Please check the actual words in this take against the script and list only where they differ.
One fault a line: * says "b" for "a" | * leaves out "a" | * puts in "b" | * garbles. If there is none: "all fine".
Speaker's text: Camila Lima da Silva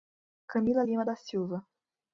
all fine